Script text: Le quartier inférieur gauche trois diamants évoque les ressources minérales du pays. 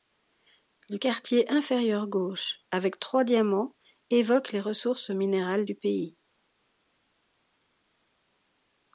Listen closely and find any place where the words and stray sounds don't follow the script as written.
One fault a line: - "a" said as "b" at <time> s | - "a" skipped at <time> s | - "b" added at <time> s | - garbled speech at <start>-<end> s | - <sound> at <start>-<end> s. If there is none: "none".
- "avec" added at 2.7 s